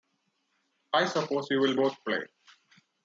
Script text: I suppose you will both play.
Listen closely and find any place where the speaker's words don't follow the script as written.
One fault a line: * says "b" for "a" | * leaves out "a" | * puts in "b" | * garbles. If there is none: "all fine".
all fine